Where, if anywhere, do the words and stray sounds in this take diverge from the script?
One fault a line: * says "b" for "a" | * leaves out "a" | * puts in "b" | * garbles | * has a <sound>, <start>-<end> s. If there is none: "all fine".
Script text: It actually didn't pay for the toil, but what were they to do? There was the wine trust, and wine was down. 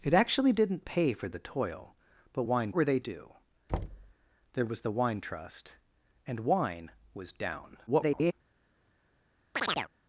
* says "wine" for "what"
* leaves out "to"
* has a thud, 3.7-4.1 s
* garbles
* has a chirp, 9.5-9.9 s